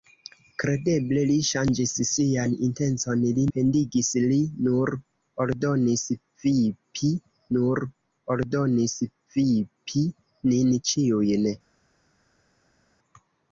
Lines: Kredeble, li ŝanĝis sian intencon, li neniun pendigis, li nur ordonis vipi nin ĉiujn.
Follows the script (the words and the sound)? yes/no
no